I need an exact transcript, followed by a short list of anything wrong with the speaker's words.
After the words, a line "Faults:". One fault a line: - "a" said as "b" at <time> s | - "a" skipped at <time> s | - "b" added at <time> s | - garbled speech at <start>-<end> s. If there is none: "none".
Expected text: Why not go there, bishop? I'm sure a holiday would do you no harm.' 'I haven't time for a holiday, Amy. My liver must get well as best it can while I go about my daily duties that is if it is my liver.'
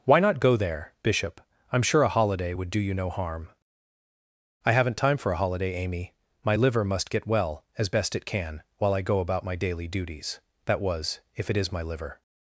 Why not go there, bishop? I'm sure a holiday would do you no harm.' 'I haven't time for a holiday, Amy. My liver must get well as best it can while I go about my daily duties that was if it is my liver.'
Faults:
- "is" said as "was" at 10.8 s